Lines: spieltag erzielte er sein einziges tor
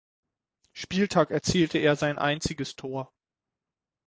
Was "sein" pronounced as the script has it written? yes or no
yes